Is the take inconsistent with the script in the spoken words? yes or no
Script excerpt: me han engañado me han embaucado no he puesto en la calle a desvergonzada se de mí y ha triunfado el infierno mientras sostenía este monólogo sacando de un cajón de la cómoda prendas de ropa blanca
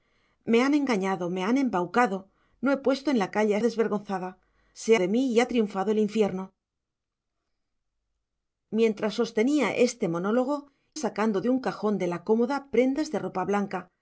no